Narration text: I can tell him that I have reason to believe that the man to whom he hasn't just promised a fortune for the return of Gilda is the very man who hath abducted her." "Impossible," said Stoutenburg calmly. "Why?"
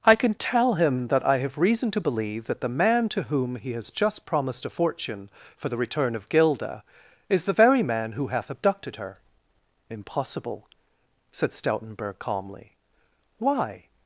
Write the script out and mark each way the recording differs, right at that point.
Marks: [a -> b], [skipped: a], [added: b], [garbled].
I can tell him that I have reason to believe that the man to whom he [hasn't -> has] just promised a fortune for the return of Gilda is the very man who hath abducted her." "Impossible," said Stoutenburg calmly. "Why?"